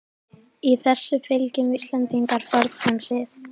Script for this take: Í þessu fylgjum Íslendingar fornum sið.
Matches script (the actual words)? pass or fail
pass